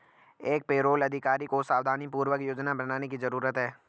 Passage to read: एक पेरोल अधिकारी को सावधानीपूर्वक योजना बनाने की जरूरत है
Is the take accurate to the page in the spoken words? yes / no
yes